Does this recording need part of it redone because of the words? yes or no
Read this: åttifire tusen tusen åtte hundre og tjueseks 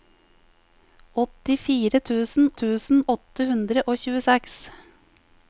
no